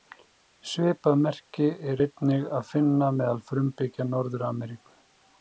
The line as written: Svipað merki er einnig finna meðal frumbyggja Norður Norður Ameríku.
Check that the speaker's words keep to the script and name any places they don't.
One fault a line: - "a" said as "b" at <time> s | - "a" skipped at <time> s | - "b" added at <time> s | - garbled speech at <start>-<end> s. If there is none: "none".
- "að" added at 2.6 s
- "Norður" skipped at 4.5 s